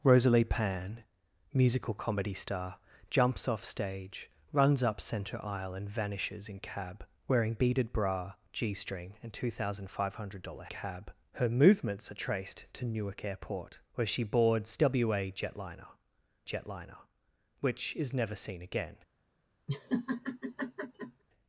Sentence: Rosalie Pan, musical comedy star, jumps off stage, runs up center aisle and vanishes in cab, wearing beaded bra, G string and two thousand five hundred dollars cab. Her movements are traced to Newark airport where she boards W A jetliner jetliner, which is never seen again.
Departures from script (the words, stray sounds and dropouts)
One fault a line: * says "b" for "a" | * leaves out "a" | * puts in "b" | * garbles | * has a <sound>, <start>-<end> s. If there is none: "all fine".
* has a laugh, 19.7-21.2 s